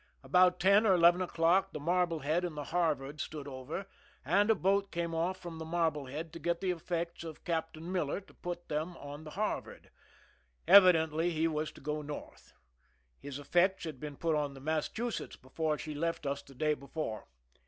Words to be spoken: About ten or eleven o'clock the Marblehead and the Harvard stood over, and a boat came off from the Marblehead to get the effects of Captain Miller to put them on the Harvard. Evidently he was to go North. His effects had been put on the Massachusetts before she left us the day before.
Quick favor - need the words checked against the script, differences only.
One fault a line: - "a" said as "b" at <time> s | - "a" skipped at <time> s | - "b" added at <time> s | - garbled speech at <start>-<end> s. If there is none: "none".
none